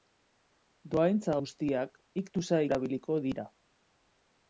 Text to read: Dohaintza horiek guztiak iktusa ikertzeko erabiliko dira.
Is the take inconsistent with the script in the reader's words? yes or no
yes